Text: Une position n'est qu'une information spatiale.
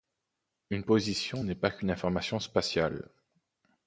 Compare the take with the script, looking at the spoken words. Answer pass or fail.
fail